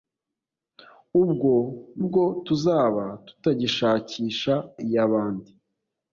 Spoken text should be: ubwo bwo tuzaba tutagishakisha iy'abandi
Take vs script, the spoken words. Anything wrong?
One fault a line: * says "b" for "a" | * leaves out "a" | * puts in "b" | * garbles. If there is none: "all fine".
all fine